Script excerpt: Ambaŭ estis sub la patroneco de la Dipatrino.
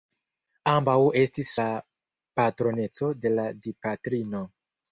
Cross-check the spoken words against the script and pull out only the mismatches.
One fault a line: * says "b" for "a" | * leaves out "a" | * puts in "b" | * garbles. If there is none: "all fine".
* leaves out "sub"